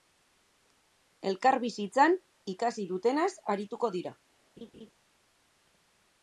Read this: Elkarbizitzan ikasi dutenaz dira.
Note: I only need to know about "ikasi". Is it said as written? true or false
true